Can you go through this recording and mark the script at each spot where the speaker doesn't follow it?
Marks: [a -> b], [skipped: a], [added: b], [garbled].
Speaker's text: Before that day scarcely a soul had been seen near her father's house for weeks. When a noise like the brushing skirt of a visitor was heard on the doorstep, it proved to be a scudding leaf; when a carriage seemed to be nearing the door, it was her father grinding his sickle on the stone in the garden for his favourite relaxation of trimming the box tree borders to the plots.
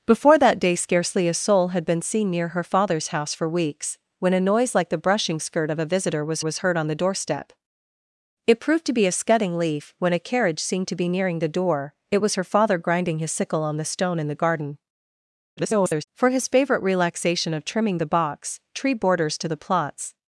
Before that day scarcely a soul had been seen near her father's house for weeks. When a noise like the brushing skirt of a visitor was [added: was] heard on the doorstep, it proved to be a scudding leaf; when a carriage seemed to be nearing the door, it was her father grinding his sickle on the stone in the garden [garbled] for his favourite relaxation of trimming the box tree borders to the plots.